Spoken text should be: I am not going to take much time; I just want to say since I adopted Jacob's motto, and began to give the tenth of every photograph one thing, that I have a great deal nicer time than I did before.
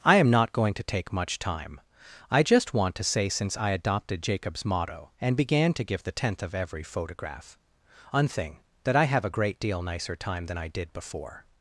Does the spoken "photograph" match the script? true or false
true